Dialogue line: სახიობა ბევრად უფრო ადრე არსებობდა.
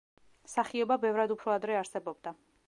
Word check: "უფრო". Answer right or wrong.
right